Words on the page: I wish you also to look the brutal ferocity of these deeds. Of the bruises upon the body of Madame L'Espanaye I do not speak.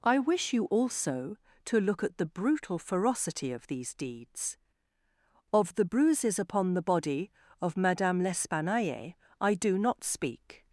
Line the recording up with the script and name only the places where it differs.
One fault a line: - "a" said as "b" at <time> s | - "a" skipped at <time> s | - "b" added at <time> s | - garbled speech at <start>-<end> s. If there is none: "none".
- "at" added at 2.0 s